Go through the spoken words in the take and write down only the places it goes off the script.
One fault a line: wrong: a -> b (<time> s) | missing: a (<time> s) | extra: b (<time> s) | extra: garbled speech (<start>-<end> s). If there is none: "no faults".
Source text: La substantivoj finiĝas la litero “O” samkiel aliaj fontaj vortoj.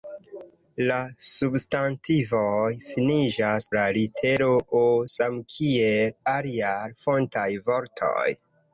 no faults